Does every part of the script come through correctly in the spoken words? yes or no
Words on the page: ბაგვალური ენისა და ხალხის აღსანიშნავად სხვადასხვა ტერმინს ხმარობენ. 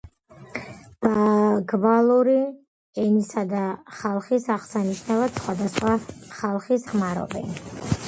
no